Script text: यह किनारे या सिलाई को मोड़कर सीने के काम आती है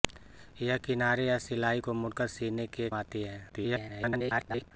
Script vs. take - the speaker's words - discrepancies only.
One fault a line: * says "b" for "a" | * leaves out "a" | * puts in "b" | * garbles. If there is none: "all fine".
* leaves out "काम"
* garbles